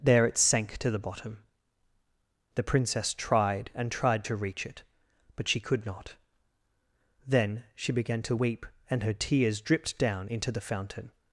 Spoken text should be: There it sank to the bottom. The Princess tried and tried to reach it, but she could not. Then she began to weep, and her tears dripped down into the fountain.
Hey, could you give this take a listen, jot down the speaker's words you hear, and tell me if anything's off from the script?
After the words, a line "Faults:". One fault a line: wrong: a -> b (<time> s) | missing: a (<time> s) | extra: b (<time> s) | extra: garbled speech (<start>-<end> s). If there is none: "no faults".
There it sank to the bottom. The Princess tried and tried to reach it, but she could not. Then she began to weep, and her tears dripped down into the fountain.
Faults:
no faults